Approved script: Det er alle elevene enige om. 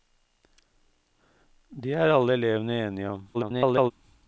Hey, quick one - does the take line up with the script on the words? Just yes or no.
no